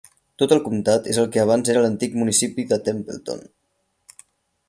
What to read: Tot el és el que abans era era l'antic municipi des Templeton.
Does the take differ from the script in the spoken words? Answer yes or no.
yes